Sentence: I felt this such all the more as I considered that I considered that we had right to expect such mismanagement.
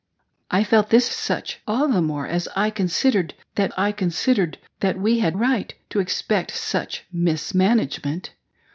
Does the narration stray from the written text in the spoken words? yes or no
no